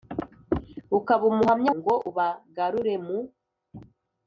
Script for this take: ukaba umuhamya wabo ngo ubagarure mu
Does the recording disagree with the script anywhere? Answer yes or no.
yes